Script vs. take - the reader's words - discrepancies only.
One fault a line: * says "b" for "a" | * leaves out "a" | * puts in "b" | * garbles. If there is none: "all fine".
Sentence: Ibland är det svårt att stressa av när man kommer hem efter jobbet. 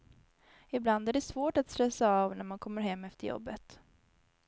all fine